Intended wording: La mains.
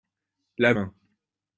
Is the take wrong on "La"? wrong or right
right